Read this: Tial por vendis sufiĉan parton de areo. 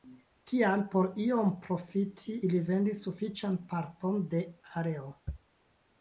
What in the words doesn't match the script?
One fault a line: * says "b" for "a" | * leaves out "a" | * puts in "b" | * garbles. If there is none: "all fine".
* puts in "iom profiti ili"